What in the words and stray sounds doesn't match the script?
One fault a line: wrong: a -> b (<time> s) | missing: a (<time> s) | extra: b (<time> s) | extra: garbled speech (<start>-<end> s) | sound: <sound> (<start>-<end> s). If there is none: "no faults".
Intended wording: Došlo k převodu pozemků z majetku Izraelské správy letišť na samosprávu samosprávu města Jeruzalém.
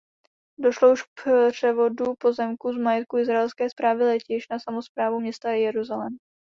extra: už (0.9 s)
missing: samosprávu (5.2 s)